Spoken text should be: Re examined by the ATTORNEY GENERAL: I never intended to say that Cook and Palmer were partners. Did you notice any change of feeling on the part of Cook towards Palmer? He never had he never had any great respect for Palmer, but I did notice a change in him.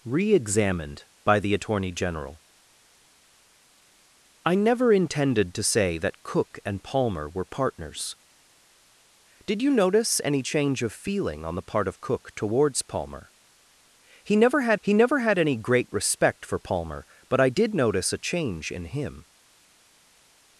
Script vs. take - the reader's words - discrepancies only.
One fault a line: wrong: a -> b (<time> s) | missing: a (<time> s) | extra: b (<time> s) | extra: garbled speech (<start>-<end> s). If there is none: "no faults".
no faults